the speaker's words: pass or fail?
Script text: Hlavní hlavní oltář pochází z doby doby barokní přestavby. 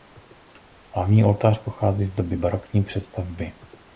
fail